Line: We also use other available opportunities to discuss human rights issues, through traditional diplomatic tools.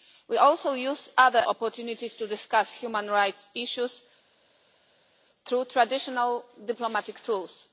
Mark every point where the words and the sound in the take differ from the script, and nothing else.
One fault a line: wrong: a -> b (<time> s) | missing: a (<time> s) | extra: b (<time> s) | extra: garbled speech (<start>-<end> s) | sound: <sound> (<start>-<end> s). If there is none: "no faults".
missing: available (1.4 s)